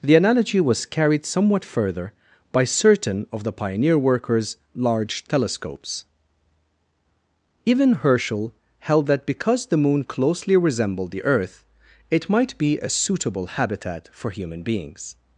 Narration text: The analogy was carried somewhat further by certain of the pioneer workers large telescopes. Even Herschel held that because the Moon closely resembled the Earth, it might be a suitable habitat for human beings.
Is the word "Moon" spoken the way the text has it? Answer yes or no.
yes